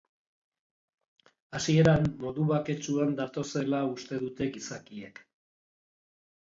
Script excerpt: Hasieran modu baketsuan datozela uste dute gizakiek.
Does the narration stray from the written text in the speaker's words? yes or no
no